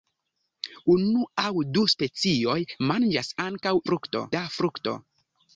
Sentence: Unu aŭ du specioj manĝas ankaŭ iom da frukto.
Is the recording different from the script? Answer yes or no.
yes